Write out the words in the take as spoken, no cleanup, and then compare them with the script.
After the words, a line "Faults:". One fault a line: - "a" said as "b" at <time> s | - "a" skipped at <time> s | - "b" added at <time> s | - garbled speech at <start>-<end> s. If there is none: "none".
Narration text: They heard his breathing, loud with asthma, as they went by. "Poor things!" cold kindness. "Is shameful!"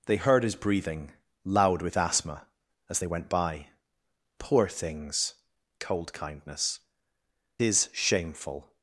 They heard his breathing, loud with asthma, as they went by. "Poor things!" cold kindness. "Is shameful!"
Faults:
none